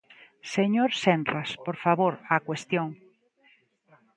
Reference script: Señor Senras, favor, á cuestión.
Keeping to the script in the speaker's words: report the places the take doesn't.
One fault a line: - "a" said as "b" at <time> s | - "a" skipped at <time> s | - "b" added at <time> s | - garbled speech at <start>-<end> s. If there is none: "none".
- "por" added at 1.6 s